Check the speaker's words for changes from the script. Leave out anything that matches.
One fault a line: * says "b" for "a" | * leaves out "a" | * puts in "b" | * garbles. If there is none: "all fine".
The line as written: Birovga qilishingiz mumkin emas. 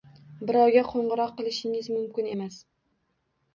* puts in "qo‘ng‘iroq"